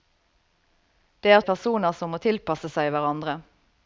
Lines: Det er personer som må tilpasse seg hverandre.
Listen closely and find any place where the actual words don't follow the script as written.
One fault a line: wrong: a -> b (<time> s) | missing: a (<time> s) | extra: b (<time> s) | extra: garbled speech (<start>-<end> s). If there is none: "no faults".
no faults